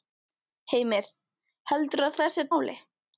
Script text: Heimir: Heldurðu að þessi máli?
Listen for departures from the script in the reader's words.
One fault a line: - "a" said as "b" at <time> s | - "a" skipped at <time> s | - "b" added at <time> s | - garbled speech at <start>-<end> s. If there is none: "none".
none